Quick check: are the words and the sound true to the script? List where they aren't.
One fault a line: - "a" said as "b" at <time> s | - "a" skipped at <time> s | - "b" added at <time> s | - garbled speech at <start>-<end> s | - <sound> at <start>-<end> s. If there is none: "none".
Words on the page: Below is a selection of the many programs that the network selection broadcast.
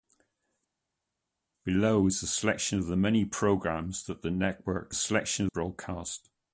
none